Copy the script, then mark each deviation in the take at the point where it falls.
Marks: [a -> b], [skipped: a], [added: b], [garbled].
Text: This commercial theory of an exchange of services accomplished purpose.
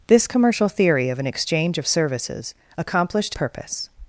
This commercial theory of an exchange of services accomplished purpose.